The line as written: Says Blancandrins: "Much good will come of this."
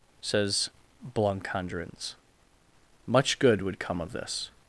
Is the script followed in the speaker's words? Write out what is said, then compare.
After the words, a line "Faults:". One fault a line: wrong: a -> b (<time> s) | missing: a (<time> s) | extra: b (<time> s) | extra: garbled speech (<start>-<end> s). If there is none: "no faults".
Says Blancandrins: "Much good would come of this."
Faults:
wrong: will -> would (3.6 s)